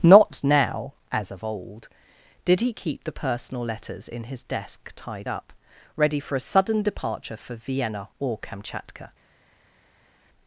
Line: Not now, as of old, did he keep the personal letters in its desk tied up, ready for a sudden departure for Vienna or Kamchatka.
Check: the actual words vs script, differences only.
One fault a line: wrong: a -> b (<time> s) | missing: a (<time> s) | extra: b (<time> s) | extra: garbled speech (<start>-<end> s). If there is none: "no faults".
wrong: its -> his (4.2 s)